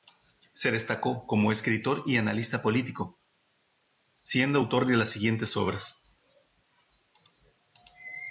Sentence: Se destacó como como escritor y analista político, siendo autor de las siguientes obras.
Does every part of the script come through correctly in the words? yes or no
no